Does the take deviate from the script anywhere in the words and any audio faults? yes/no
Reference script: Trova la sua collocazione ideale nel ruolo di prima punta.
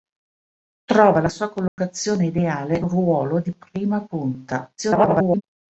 yes